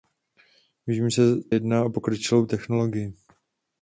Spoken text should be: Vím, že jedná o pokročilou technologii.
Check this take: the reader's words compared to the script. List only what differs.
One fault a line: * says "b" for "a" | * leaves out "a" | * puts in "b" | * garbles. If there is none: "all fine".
all fine